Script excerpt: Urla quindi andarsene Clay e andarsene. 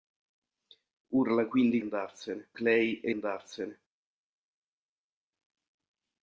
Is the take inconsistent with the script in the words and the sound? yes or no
no